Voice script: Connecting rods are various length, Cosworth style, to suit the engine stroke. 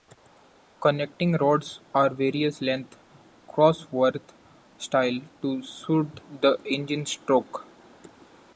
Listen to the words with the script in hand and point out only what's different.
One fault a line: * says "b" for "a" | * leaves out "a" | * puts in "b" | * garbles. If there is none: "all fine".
all fine